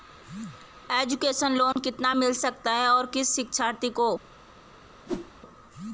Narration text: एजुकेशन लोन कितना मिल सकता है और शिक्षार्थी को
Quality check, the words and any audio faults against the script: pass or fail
fail